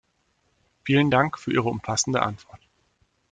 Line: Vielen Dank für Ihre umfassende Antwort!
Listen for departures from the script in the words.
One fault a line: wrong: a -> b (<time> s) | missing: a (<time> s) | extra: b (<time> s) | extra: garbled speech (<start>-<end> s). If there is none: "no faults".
no faults